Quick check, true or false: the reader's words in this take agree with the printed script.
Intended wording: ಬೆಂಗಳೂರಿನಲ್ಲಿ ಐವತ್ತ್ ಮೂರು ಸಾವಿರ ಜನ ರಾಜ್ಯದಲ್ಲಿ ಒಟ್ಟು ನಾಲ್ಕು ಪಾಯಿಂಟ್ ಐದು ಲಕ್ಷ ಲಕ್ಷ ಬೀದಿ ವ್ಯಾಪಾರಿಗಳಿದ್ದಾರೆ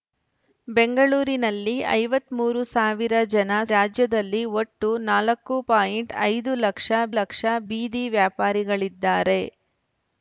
true